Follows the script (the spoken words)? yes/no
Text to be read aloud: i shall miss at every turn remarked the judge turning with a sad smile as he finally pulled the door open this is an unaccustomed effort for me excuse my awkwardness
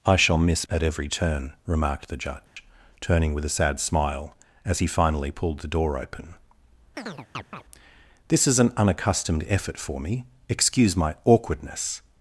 yes